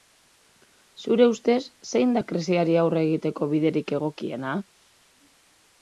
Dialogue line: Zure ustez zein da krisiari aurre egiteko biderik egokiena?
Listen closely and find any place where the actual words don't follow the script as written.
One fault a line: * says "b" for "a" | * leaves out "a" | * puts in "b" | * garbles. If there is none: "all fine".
all fine